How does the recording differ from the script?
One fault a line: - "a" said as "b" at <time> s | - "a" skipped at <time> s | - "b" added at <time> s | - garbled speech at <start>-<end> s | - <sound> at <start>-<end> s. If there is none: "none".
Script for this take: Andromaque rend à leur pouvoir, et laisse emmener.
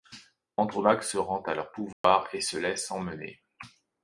- "se" added at 1.0 s
- dropout at 1.9-2.0 s
- "se" added at 2.4 s